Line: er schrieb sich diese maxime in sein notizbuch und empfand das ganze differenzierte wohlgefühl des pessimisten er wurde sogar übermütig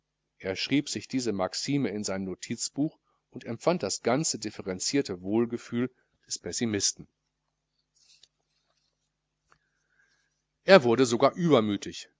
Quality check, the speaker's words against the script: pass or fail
pass